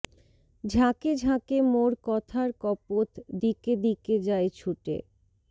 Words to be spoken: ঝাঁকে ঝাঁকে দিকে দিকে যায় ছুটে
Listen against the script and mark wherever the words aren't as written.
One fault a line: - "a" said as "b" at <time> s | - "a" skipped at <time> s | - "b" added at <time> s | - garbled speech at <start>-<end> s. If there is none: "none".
- "মোর কথার কপোত" added at 1.7 s